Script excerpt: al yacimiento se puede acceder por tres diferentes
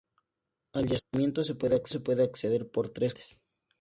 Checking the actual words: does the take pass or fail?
pass